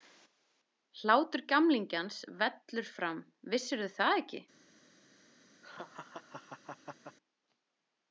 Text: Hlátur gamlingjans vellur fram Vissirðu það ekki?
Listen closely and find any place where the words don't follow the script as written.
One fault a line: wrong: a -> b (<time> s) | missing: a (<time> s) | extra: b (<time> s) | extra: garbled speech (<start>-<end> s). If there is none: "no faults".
no faults